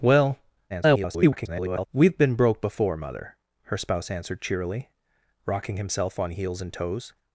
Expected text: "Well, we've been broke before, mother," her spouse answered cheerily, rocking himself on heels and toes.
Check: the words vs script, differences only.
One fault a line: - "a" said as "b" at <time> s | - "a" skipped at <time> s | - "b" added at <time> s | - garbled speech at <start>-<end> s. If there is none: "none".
- garbled speech at 0.7-1.9 s